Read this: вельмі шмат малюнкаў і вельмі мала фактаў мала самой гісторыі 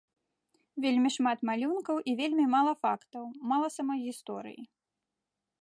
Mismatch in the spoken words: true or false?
false